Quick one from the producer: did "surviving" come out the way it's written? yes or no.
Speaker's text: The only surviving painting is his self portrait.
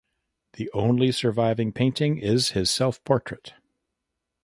yes